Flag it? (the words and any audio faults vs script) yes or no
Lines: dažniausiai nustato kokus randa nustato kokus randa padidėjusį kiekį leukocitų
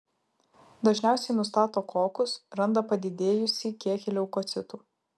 yes